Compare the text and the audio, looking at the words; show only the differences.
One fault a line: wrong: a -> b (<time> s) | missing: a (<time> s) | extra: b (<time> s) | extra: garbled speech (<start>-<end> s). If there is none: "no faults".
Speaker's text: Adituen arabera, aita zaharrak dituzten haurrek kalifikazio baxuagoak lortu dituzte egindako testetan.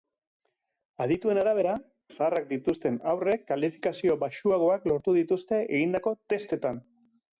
missing: aita (1.7 s)